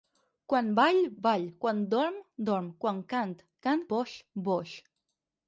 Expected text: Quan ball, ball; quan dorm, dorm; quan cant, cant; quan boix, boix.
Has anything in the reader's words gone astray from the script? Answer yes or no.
yes